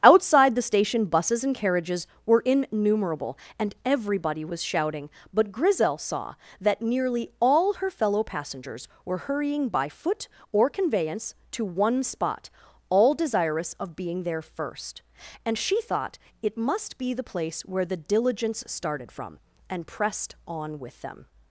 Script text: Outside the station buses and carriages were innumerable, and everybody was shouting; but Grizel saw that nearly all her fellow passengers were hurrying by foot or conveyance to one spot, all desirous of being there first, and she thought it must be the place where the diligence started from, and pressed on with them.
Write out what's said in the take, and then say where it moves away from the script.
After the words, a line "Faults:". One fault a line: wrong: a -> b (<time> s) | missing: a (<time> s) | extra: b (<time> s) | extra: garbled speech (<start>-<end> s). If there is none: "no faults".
Outside the station buses and carriages were innumerable, and everybody was shouting; but Grizel saw that nearly all her fellow passengers were hurrying by foot or conveyance to one spot, all desirous of being there first, and she thought it must be the place where the diligence started from, and pressed on with them.
Faults:
no faults